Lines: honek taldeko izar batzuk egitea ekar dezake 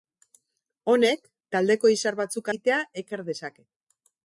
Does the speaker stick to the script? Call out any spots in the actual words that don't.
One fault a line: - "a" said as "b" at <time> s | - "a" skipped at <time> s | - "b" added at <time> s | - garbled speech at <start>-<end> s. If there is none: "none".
none